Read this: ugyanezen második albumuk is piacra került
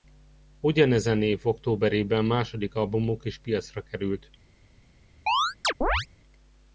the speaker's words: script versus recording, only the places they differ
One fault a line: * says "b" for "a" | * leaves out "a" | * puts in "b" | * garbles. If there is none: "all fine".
* puts in "év októberében"